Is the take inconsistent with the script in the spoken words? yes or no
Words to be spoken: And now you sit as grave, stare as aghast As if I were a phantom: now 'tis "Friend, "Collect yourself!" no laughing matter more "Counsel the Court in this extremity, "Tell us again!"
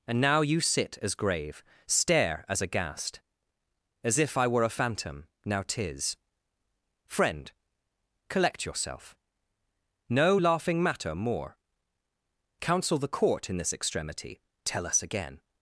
no